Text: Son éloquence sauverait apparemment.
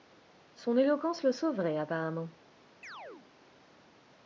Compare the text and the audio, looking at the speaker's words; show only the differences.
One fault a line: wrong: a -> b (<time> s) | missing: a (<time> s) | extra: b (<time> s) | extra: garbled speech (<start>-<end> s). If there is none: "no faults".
extra: le (1.2 s)